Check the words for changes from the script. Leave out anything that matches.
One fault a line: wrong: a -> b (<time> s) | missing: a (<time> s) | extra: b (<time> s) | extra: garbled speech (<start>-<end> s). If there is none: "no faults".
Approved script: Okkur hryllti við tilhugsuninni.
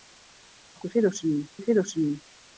wrong: hryllti -> tilhugsuninni (0.9 s)